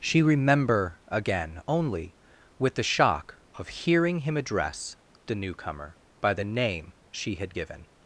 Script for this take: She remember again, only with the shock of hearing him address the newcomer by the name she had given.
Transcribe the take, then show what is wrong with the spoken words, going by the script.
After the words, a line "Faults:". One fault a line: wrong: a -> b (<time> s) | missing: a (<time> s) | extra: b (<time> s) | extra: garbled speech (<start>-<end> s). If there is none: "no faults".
She remember again, only with the shock of hearing him address the newcomer by the name she had given.
Faults:
no faults